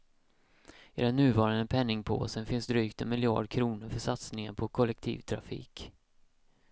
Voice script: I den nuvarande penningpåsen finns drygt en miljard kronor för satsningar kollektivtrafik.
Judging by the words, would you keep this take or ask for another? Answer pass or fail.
fail